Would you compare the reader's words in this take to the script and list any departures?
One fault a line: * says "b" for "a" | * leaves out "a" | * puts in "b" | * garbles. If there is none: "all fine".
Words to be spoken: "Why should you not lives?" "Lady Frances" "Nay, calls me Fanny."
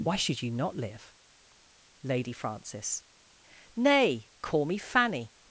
* says "live" for "lives"
* says "call" for "calls"